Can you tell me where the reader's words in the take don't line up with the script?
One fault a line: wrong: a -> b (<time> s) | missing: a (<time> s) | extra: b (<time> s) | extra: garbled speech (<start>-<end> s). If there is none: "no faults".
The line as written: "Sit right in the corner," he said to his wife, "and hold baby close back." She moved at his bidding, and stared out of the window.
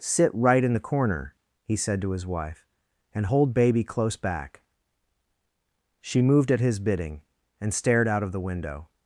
no faults